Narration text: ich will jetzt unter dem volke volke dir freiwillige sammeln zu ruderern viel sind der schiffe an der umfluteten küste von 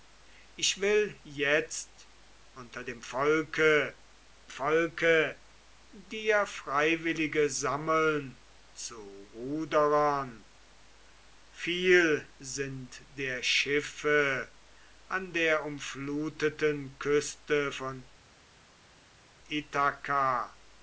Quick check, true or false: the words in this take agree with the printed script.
true